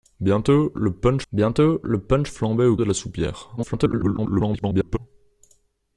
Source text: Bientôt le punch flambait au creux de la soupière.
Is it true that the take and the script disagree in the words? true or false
true